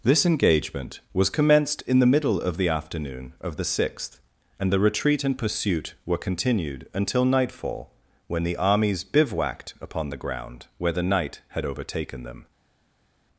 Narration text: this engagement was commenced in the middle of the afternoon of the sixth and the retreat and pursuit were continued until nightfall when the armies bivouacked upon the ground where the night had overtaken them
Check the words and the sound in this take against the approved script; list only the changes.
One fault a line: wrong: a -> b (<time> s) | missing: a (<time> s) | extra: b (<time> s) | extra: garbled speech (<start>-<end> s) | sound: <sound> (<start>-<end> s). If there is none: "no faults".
no faults